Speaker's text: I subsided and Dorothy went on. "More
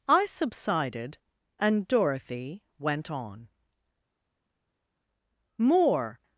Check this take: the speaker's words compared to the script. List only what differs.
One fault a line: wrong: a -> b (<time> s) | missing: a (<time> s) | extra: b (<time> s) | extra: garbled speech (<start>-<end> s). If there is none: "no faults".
no faults